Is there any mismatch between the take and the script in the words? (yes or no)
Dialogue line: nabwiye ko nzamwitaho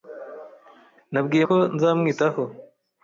no